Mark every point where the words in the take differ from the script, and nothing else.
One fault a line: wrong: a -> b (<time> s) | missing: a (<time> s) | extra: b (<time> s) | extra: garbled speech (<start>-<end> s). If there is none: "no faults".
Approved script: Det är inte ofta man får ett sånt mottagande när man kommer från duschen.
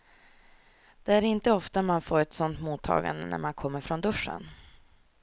no faults